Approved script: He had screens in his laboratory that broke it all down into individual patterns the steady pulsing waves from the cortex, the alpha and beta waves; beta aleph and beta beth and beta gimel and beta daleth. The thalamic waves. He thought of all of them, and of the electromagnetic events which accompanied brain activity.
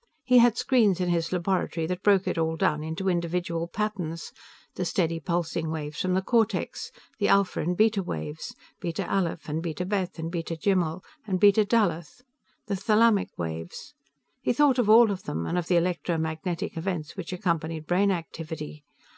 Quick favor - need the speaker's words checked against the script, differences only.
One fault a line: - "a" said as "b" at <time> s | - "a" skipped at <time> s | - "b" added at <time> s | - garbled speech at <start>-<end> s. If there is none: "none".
none